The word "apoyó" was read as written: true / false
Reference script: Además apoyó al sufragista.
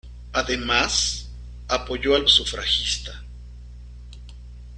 true